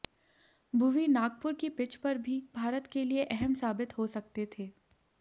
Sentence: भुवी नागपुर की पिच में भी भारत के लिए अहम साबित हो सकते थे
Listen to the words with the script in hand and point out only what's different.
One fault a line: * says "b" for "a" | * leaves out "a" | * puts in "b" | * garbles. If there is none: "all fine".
* says "पर" for "में"